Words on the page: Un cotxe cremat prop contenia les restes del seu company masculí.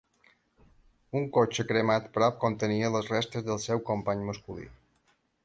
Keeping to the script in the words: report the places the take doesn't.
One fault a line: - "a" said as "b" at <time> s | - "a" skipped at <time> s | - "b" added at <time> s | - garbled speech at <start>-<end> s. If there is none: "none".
none